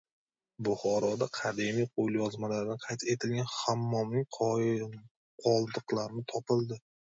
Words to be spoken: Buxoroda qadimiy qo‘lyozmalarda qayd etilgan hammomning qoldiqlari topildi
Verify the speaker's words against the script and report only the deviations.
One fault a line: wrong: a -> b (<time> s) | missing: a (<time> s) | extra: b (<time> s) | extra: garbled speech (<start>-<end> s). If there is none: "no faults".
no faults